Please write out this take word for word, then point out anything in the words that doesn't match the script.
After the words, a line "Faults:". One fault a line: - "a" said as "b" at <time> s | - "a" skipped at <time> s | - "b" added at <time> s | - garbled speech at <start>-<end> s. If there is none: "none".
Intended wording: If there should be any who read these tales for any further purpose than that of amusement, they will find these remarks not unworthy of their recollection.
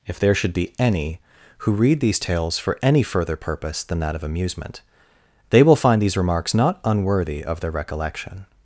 If there should be any who read these tales for any further purpose than that of amusement, they will find these remarks not unworthy of their recollection.
Faults:
none